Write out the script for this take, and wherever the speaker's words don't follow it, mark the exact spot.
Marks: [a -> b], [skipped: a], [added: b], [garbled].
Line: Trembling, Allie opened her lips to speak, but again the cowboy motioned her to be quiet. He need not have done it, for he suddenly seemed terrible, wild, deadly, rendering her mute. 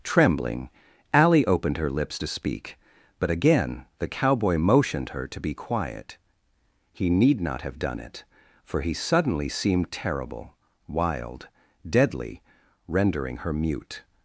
Trembling, Allie opened her lips to speak, but again the cowboy motioned her to be quiet. He need not have done it, for he suddenly seemed terrible, wild, deadly, rendering her mute.